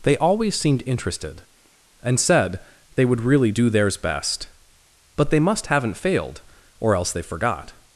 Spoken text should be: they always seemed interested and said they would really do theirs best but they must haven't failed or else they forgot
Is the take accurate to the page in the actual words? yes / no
yes